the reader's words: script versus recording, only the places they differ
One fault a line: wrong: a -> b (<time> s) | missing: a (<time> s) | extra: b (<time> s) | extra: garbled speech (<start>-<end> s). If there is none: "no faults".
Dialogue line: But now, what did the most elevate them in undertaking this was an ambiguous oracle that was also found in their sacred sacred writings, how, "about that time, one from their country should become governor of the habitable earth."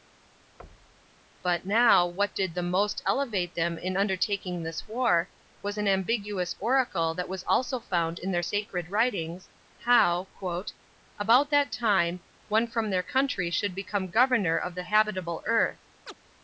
extra: war (4.9 s)
missing: sacred (8.9 s)